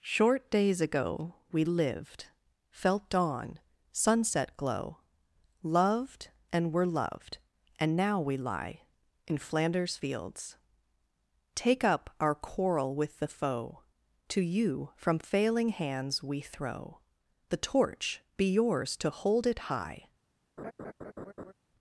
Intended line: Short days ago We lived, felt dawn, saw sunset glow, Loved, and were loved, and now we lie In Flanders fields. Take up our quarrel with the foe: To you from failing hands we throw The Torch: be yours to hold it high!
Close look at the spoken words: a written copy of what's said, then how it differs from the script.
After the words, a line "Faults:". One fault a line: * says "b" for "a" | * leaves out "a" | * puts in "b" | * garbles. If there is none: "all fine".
Short days ago We lived, felt dawn, sunset glow, Loved, and were loved, and now we lie In Flanders fields. Take up our quarrel with the foe: To you from failing hands we throw The Torch: be yours to hold it high!
Faults:
* leaves out "saw"